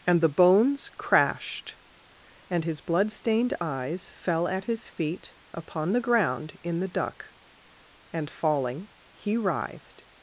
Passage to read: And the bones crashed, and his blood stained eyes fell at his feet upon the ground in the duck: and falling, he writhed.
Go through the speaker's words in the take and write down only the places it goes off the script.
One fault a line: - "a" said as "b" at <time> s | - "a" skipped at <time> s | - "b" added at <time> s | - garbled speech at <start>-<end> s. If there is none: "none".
none